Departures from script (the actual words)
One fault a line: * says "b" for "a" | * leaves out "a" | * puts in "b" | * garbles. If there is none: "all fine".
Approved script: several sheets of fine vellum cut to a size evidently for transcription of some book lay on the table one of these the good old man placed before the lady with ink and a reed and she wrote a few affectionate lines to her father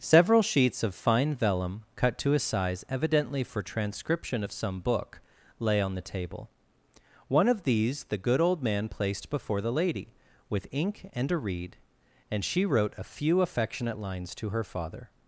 all fine